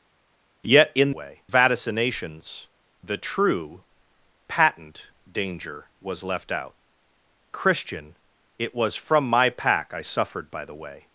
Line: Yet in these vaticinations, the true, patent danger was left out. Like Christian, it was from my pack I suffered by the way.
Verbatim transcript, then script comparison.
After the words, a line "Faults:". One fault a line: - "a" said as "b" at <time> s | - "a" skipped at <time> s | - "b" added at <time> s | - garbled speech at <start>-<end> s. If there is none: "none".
Yet in way vaticinations, the true, patent danger was left out. Christian, it was from my pack I suffered by the way.
Faults:
- "these" said as "way" at 1.1 s
- "Like" skipped at 6.7 s